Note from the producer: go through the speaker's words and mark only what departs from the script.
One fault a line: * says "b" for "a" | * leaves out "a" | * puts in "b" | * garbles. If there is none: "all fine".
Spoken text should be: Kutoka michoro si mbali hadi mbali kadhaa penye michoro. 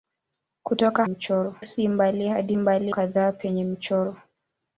all fine